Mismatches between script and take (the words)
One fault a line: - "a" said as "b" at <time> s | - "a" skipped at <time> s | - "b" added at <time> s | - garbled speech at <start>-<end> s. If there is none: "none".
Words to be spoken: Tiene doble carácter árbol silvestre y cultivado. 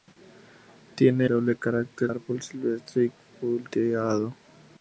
none